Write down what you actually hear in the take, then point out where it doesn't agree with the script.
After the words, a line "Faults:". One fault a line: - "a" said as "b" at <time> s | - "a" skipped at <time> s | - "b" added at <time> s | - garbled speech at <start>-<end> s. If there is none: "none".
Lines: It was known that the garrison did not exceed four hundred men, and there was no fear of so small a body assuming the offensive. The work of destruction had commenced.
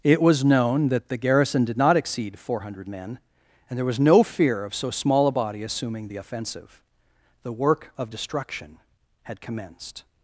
It was known that the garrison did not exceed four hundred men, and there was no fear of so small a body assuming the offensive. The work of destruction had commenced.
Faults:
none